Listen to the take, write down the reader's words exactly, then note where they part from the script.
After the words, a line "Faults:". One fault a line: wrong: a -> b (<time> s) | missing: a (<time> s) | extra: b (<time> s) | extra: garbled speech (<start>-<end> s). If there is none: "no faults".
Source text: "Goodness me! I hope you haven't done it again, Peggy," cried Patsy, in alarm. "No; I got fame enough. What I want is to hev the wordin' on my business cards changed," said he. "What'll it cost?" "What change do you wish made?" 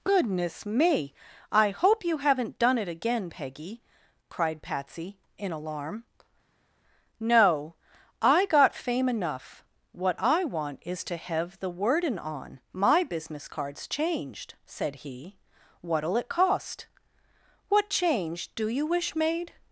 "Goodness me! I hope you haven't done it again, Peggy," cried Patsy, in alarm. "No; I got fame enough. What I want is to hev the wordin' on my business cards changed," said he. "What'll it cost?" "What change do you wish made?"
Faults:
no faults